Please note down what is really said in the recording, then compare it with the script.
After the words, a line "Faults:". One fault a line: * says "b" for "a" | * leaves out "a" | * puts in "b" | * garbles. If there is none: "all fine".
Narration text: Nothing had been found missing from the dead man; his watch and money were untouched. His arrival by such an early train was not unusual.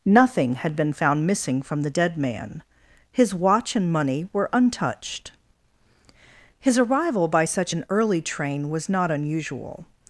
Nothing had been found missing from the dead man; his watch and money were untouched. His arrival by such an early train was not unusual.
Faults:
all fine